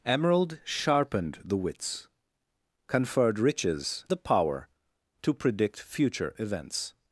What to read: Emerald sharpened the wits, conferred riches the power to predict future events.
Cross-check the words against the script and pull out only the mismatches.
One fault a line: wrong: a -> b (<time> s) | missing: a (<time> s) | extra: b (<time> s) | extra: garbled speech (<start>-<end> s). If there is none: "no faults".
no faults